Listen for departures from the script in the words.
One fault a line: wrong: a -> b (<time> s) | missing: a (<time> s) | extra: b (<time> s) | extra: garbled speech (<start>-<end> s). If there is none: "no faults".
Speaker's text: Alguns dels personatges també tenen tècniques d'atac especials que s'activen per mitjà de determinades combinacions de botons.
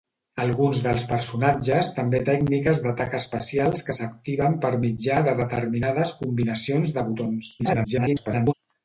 missing: tenen (2.2 s)
extra: garbled speech (7.6-8.5 s)